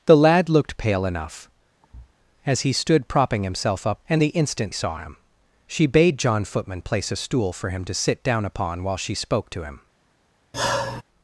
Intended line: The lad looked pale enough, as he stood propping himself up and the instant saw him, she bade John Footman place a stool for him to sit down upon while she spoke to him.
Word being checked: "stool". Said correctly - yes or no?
yes